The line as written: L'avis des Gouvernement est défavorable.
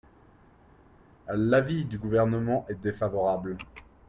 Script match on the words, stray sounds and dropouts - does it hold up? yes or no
no